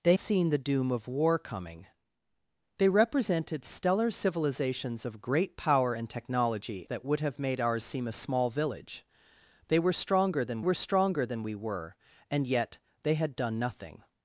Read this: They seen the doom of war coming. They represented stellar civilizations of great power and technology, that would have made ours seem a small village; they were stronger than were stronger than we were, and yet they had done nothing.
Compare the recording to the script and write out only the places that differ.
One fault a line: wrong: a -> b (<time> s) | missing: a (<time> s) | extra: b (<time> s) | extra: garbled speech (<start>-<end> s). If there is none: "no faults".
no faults